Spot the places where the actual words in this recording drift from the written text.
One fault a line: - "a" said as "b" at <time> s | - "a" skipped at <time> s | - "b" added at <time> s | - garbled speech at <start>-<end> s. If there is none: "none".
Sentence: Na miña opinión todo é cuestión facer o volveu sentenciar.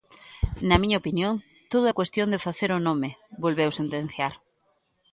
- "de" added at 2.3 s
- "nome" added at 2.9 s